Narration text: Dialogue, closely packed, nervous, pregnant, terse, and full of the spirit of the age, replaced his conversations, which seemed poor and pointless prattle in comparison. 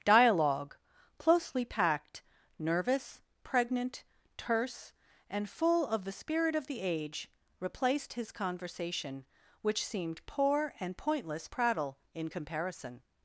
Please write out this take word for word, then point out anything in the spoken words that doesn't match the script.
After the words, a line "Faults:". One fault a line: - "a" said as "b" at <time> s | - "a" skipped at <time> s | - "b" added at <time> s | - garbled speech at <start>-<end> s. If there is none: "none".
Dialogue, closely packed, nervous, pregnant, terse, and full of the spirit of the age, replaced his conversation, which seemed poor and pointless prattle in comparison.
Faults:
- "conversations" said as "conversation" at 8.3 s